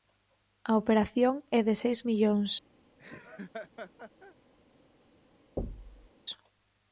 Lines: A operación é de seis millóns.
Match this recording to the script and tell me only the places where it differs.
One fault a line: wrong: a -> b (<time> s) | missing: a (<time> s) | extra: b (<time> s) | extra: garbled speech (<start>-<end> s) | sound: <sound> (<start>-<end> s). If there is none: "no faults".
sound: laugh (3.0-4.4 s)
sound: thud (5.6-6.1 s)